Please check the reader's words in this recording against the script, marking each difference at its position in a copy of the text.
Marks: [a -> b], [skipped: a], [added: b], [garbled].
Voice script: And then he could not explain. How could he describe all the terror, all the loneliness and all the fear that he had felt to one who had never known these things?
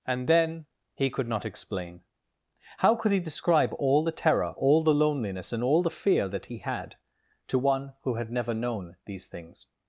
And then he could not explain. How could he describe all the terror, all the loneliness and all the fear that he had [skipped: felt] to one who had never known these things?